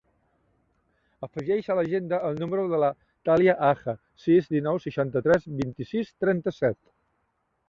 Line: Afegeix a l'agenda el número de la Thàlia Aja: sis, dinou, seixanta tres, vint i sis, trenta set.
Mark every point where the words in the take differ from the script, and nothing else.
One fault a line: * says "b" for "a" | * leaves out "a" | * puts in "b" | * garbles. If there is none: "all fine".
all fine